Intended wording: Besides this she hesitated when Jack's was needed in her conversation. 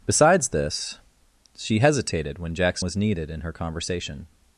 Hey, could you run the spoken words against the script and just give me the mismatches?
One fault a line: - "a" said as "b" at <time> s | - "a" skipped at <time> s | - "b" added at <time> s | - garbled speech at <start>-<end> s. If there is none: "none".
none